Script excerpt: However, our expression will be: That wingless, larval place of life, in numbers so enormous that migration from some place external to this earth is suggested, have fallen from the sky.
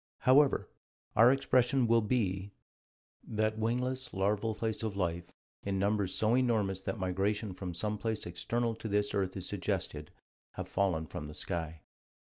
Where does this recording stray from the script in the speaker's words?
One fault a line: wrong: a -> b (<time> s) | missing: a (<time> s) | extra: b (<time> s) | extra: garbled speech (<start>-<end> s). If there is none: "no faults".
no faults